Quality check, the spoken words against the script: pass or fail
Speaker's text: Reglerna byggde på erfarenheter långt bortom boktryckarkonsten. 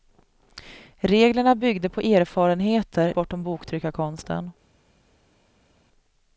fail